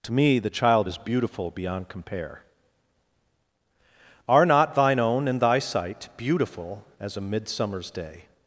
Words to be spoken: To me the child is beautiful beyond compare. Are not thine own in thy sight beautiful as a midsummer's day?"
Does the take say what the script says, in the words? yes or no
yes